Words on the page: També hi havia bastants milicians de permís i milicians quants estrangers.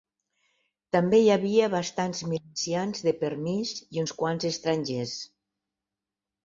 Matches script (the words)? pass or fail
fail